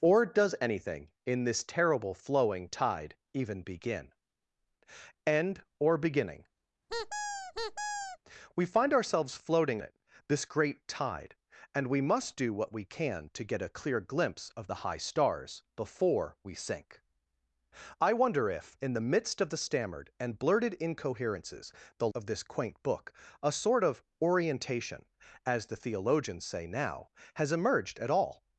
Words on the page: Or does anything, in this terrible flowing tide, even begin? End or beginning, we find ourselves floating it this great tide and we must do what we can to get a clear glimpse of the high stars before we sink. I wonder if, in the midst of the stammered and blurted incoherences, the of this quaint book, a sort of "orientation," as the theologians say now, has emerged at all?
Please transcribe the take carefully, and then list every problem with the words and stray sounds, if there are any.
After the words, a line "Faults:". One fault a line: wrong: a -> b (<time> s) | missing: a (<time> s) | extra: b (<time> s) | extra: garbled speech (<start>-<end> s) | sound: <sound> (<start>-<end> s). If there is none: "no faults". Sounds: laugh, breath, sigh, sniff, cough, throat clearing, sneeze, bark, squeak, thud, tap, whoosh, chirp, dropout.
Or does anything, in this terrible flowing tide, even begin? End or beginning, we find ourselves floating it this great tide and we must do what we can to get a clear glimpse of the high stars before we sink. I wonder if, in the midst of the stammered and blurted incoherences, the of this quaint book, a sort of "orientation," as the theologians say now, has emerged at all?
Faults:
sound: squeak (6.9-8.2 s)